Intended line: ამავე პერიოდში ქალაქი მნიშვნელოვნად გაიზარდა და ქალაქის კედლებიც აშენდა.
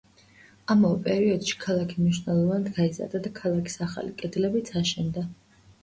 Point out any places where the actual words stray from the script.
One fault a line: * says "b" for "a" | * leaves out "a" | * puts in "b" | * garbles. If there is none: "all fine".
* puts in "ახალი"